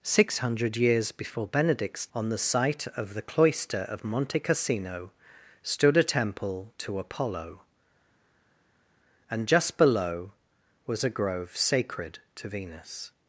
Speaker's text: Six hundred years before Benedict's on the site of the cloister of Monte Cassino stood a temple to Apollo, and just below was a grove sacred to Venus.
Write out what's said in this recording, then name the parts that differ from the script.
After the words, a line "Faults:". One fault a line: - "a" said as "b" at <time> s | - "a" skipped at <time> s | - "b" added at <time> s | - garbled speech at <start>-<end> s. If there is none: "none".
Six hundred years before Benedict's on the site of the cloister of Monte Cassino stood a temple to Apollo, and just below was a grove sacred to Venus.
Faults:
none